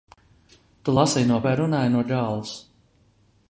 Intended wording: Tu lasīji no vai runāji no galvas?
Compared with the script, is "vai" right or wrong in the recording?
right